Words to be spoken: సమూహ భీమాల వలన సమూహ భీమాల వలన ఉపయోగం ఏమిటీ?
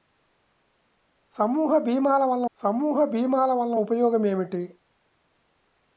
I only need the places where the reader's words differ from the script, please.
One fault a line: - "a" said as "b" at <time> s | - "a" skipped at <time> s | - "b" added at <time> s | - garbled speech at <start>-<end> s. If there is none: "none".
none